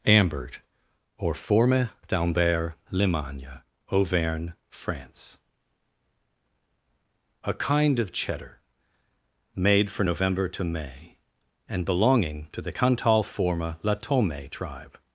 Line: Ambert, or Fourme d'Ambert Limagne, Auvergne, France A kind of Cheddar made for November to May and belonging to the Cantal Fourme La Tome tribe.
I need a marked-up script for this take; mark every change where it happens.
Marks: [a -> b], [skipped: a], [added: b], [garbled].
Ambert, or Fourme d'Ambert Limagne, Auvergne, France A kind of Cheddar made for November to May and belonging to the Cantal Fourme La Tome tribe.